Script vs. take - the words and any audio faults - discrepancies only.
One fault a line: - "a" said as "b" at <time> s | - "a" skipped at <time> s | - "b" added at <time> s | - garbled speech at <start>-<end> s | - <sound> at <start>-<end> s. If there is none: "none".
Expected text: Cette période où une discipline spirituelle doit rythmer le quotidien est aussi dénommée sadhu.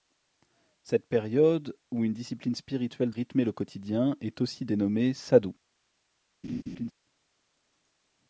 - "doit" skipped at 3.1 s
- laugh at 6.4-6.9 s